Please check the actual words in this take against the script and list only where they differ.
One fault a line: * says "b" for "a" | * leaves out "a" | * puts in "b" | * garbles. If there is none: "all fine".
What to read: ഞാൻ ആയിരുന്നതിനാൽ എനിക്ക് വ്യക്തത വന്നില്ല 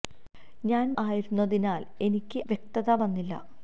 all fine